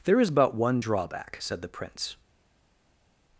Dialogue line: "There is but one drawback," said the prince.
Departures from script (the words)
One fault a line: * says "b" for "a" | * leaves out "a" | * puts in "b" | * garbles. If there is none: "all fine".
all fine